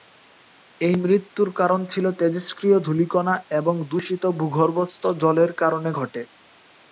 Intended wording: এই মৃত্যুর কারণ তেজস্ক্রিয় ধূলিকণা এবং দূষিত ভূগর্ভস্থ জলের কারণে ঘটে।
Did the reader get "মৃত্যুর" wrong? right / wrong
right